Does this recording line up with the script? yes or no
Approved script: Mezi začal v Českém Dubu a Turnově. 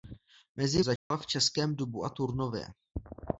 yes